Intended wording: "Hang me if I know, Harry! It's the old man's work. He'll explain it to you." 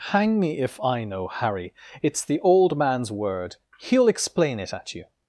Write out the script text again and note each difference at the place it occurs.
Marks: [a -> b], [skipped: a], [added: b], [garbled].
"Hang me if I know, Harry! It's the old man's [work. -> word] He'll explain it [to -> at] you."